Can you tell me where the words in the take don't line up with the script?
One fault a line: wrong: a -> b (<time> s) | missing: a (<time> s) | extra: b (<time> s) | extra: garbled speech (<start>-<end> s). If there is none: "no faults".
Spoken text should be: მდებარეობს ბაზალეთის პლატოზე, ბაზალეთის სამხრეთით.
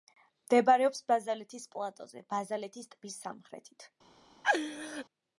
extra: ტბის (3.0 s)